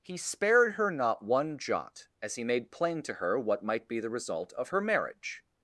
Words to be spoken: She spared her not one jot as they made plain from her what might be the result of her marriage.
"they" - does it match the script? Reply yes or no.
no